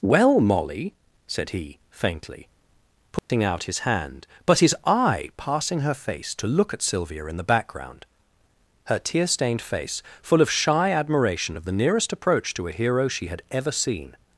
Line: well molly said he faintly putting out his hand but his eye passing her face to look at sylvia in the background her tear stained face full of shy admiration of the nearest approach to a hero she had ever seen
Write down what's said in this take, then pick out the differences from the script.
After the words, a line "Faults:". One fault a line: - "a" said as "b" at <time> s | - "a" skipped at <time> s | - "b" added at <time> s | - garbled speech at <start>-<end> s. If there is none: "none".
well molly said he faintly putting out his hand but his eye passing her face to look at sylvia in the background her tear stained face full of shy admiration of the nearest approach to a hero she had ever seen
Faults:
none